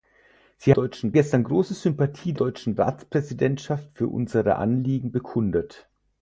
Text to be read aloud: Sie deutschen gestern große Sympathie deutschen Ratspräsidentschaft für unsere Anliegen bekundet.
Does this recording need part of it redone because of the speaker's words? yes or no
no